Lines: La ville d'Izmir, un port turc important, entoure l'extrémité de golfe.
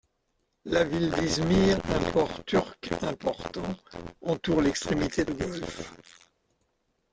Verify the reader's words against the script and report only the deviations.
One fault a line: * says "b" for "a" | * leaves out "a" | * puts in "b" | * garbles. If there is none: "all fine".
all fine